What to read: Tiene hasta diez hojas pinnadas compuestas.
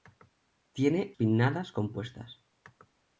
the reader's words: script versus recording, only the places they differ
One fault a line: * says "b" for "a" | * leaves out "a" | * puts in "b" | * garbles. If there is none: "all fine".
* leaves out "hasta diez hojas"